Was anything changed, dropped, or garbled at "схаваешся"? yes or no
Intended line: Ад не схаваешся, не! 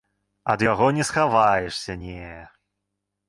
no